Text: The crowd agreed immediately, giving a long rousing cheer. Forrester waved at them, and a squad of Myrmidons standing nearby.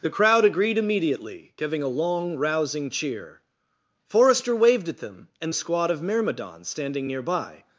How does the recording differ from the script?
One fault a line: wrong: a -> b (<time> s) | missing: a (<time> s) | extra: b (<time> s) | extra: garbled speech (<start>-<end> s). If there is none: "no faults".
no faults